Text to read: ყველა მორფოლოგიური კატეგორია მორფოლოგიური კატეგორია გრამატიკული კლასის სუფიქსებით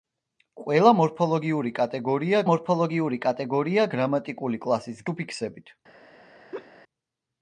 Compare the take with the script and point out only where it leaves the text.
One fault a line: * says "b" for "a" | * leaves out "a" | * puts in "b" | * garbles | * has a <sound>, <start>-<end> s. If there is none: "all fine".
* has a laugh, 6.5-6.7 s